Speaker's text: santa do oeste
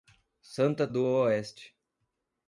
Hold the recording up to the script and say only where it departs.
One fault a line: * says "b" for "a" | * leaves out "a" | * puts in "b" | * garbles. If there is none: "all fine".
all fine